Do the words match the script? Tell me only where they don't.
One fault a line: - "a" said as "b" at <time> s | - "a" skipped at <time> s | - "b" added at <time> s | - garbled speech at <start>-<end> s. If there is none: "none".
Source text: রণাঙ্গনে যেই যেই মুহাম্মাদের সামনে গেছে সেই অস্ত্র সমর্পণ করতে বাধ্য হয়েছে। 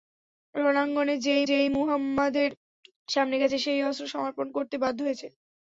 none